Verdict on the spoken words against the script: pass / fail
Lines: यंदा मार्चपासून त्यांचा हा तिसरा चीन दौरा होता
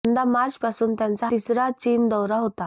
fail